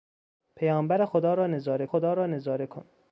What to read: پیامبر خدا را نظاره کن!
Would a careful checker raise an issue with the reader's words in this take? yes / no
yes